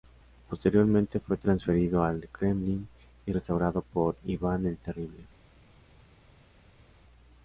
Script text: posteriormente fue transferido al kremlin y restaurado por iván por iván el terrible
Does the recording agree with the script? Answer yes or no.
no